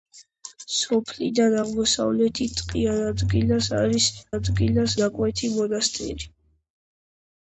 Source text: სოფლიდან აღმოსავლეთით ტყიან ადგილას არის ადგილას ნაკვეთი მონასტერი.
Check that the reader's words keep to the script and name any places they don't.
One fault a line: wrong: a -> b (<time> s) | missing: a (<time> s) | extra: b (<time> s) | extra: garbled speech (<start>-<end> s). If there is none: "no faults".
no faults